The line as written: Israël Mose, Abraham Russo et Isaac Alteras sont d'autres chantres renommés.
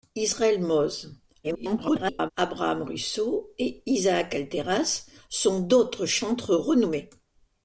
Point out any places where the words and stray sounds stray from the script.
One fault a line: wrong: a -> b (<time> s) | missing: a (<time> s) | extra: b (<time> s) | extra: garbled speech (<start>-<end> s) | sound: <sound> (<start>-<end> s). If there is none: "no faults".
extra: garbled speech (1.4-2.3 s)